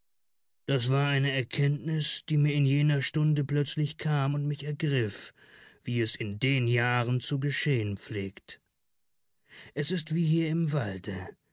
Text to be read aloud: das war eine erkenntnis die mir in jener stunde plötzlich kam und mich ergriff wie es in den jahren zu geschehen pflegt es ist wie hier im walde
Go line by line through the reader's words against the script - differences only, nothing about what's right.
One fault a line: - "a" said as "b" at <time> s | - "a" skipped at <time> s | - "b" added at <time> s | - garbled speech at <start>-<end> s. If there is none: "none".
none